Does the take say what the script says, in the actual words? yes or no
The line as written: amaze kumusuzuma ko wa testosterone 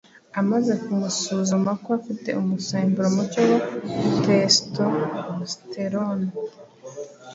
no